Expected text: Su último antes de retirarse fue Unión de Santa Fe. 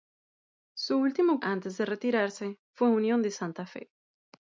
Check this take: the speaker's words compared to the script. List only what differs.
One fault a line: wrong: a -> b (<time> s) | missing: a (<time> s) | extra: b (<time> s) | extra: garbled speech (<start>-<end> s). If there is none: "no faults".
no faults